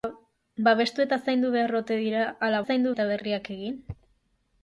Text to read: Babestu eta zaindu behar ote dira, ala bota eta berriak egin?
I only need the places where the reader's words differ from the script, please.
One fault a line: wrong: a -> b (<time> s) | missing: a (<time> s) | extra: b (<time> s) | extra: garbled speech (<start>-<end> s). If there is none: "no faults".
wrong: bota -> zaindu (2.7 s)